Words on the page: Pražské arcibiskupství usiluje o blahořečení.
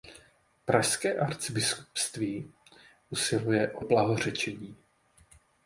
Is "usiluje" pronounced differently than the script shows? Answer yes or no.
no